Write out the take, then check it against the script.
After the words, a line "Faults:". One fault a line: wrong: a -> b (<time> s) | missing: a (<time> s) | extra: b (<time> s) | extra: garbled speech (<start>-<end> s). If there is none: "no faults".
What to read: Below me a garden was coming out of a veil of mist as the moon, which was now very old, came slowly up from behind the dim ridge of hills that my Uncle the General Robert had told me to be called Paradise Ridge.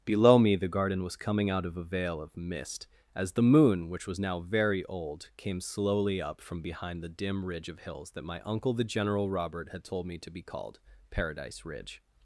Below me the garden was coming out of a veil of mist as the moon, which was now very old, came slowly up from behind the dim ridge of hills that my Uncle the General Robert had told me to be called Paradise Ridge.
Faults:
wrong: a -> the (0.6 s)